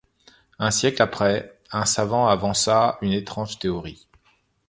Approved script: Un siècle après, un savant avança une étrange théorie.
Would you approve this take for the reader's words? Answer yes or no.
yes